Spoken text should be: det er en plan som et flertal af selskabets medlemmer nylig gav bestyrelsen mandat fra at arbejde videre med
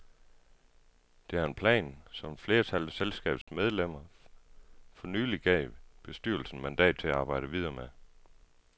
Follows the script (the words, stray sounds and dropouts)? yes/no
no